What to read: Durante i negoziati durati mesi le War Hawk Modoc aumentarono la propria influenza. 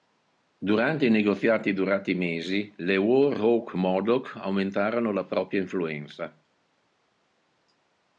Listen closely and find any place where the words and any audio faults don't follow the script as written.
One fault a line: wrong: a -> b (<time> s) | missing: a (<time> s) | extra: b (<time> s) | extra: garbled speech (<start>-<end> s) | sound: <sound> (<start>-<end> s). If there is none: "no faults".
no faults